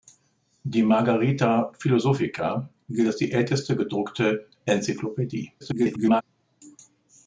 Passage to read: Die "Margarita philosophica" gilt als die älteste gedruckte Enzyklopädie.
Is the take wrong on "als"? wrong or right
right